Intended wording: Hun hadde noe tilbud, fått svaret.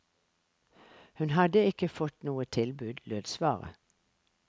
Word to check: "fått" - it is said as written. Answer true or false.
false